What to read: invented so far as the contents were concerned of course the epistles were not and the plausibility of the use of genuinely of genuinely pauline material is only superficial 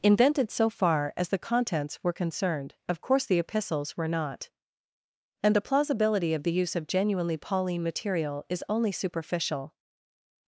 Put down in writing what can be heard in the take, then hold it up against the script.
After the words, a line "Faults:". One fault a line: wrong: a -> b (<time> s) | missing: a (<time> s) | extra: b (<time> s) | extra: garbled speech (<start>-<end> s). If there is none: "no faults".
invented so far as the contents were concerned of course the epistles were not and the plausibility of the use of genuinely pauline material is only superficial
Faults:
missing: of genuinely (7.4 s)